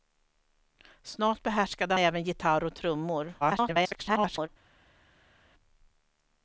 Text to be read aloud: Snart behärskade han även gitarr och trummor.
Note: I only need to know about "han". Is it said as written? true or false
false